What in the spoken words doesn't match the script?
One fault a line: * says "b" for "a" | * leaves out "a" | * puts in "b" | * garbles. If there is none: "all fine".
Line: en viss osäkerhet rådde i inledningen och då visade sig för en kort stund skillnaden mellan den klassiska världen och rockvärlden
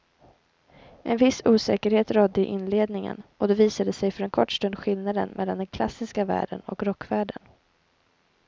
all fine